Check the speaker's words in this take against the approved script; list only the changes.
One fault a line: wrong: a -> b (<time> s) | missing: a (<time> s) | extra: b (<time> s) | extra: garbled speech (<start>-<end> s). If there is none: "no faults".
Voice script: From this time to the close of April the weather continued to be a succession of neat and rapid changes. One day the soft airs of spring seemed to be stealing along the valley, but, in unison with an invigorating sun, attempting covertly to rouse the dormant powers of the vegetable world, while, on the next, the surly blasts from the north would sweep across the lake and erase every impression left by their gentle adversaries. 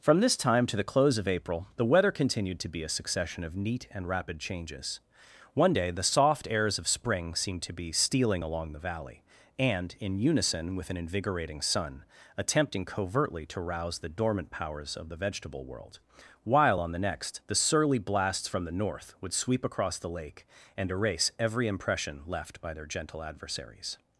wrong: but -> and (9.6 s)